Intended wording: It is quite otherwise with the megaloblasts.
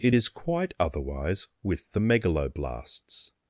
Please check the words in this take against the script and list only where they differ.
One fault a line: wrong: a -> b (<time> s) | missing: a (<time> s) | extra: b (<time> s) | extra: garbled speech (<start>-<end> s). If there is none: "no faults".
no faults